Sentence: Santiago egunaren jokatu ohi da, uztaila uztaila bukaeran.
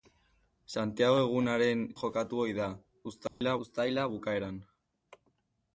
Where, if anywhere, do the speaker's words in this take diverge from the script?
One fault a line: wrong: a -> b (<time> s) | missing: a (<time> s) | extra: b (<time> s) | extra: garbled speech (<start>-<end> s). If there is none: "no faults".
no faults